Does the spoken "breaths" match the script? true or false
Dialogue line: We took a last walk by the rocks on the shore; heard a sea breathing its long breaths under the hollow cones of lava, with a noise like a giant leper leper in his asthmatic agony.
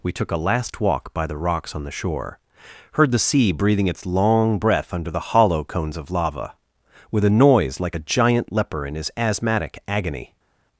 false